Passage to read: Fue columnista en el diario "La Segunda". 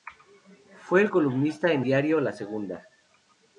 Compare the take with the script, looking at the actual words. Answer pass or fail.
fail